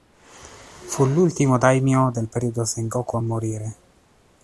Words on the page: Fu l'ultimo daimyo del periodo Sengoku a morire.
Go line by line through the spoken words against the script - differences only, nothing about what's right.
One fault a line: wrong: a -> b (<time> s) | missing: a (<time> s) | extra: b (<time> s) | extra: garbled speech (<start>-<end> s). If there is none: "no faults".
no faults